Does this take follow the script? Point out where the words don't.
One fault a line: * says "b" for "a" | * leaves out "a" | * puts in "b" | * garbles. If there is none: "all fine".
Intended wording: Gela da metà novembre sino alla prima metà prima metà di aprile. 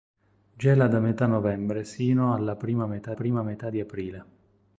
all fine